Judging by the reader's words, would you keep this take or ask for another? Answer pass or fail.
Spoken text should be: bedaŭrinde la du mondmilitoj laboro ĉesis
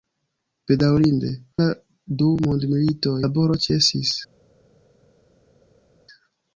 pass